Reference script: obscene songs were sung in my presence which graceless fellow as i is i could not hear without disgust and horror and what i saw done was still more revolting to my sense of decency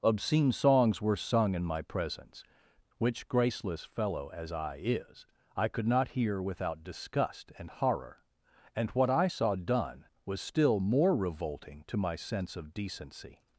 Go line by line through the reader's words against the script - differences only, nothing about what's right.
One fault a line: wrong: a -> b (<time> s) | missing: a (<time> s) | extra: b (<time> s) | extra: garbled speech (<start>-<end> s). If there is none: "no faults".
no faults